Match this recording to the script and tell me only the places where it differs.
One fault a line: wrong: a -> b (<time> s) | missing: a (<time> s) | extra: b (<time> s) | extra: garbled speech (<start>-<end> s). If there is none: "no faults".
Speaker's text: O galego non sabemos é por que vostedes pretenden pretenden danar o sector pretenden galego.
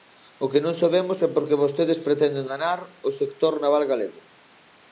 wrong: galego -> que (0.5 s)
missing: pretenden (2.5 s)
wrong: pretenden -> naval (3.6 s)